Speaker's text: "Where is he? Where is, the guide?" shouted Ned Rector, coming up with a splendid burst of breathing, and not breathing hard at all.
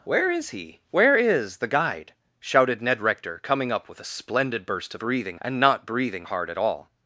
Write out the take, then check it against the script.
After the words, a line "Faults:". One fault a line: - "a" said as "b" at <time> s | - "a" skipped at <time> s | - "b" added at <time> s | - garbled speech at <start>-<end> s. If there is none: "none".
"Where is he? Where is, the guide?" shouted Ned Rector, coming up with a splendid burst of breathing, and not breathing hard at all.
Faults:
none